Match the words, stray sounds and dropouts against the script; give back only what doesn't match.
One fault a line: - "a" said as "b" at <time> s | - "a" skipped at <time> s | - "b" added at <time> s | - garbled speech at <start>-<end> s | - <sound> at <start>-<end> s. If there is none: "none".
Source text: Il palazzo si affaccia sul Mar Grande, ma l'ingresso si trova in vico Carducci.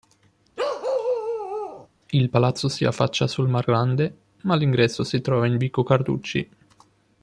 - bark at 0.6-1.9 s